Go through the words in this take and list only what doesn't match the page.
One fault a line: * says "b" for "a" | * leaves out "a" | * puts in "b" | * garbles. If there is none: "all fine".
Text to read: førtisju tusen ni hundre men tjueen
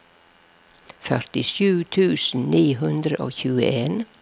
* says "og" for "men"